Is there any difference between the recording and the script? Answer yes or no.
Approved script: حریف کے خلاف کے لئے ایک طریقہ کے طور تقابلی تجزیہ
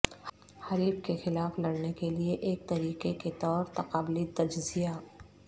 yes